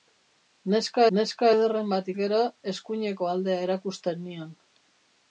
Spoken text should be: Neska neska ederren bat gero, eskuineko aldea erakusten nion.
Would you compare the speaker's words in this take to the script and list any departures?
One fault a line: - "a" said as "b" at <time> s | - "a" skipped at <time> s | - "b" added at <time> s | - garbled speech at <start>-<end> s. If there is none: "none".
none